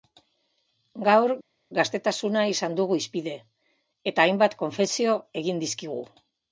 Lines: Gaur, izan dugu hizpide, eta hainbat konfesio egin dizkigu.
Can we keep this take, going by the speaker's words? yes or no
no